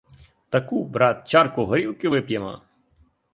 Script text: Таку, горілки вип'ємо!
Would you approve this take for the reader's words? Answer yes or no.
no